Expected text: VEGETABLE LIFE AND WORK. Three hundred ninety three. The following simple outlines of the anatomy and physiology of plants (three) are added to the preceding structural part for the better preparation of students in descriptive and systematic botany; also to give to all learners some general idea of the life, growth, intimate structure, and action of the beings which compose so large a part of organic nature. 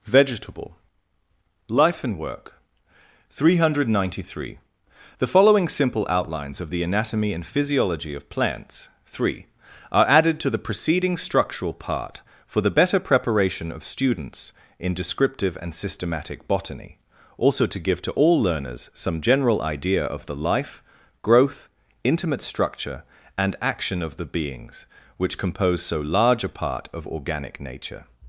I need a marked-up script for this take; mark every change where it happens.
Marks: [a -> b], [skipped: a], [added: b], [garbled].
VEGETABLE LIFE AND WORK. Three hundred ninety three. The following simple outlines of the anatomy and physiology of plants (three) are added to the preceding structural part for the better preparation of students in descriptive and systematic botany; also to give to all learners some general idea of the life, growth, intimate structure, and action of the beings which compose so large a part of organic nature.